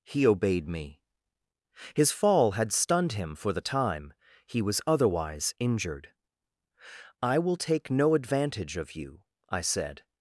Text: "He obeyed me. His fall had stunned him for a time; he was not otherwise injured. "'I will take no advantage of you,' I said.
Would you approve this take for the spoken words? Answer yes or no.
no